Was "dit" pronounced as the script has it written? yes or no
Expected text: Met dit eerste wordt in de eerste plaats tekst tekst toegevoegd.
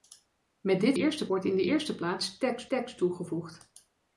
yes